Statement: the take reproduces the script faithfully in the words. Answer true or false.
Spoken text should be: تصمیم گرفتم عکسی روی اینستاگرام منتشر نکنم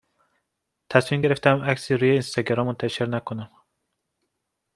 true